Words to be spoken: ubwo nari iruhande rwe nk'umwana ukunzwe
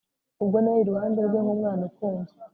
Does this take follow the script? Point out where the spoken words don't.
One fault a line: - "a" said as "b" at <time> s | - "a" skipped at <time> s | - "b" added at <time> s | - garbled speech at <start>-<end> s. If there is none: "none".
none